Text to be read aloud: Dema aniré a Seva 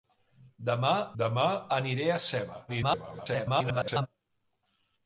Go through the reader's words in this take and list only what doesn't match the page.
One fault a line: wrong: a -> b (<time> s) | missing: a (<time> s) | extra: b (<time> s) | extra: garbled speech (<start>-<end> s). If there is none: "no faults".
extra: dema (1.2 s)
extra: garbled speech (2.7-4.1 s)